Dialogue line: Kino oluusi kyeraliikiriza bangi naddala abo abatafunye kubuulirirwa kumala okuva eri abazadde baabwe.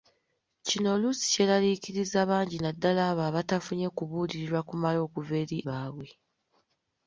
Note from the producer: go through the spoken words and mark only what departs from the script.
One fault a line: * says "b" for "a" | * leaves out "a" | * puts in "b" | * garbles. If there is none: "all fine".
* leaves out "abazadde"